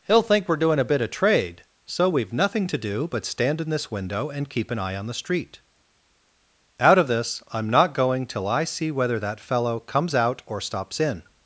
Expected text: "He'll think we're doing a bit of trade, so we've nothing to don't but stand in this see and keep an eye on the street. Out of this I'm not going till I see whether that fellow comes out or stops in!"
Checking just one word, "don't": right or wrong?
wrong